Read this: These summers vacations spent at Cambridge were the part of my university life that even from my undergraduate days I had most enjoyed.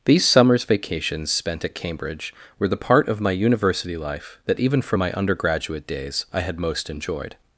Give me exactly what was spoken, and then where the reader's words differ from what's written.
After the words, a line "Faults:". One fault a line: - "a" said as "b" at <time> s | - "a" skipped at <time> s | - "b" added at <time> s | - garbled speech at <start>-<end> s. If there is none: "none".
These summers vacations spent at Cambridge were the part of my university life that even from my undergraduate days I had most enjoyed.
Faults:
none